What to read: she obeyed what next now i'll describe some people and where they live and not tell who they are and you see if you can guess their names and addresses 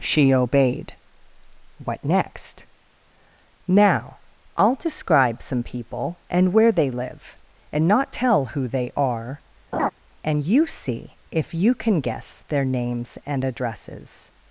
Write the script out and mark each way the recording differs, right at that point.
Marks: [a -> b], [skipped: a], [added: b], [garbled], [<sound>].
she obeyed what next now i'll describe some people and where they live and not tell who they are [laugh] and you see if you can guess their names and addresses